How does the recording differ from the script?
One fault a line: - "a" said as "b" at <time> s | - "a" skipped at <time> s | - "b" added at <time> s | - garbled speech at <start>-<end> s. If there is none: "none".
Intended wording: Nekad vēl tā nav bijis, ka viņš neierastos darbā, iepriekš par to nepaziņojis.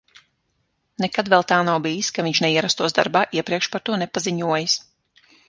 none